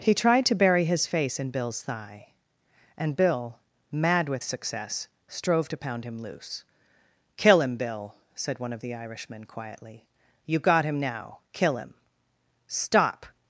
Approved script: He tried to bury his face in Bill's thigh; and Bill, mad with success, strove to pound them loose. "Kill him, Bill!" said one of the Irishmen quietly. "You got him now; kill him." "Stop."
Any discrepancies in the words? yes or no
yes